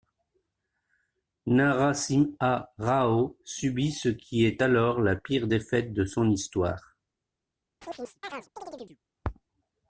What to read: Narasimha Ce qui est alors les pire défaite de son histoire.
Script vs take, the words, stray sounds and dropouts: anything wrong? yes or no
yes